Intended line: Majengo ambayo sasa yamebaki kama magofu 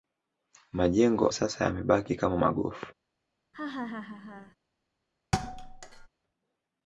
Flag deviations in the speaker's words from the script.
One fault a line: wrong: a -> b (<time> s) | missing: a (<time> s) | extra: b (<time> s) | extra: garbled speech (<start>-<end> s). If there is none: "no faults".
missing: ambayo (1.3 s)